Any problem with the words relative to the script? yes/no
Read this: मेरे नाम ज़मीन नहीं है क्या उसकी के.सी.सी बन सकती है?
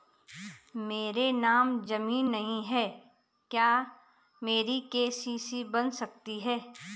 yes